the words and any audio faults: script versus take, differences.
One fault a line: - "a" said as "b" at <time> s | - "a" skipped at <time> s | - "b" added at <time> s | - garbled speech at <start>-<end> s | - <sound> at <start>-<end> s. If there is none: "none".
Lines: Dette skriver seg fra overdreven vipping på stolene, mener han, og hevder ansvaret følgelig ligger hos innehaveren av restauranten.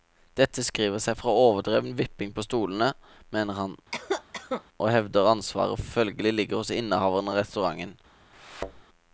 - cough at 3.9-4.6 s
- thud at 8.3-8.8 s